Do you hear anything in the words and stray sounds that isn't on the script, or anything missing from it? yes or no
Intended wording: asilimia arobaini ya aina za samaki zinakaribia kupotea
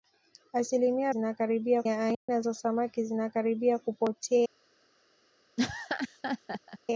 yes